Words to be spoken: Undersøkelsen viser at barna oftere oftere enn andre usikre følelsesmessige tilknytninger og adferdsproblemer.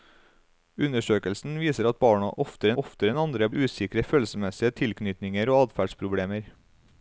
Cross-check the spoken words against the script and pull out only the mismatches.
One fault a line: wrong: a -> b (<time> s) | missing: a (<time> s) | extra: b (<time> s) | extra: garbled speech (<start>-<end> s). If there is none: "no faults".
no faults